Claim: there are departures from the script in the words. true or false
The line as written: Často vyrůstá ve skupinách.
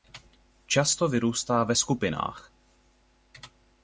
false